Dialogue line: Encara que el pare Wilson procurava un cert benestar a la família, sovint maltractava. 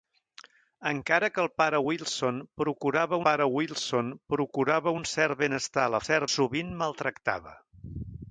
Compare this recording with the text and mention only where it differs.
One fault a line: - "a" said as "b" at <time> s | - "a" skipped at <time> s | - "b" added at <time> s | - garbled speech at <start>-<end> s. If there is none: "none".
- "pare Wilson procurava" added at 3.3 s
- "família" said as "cert" at 6.0 s